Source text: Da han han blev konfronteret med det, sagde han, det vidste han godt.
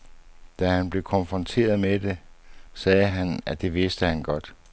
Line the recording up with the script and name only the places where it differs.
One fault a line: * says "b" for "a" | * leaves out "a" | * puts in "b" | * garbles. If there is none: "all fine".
* leaves out "han"
* puts in "at"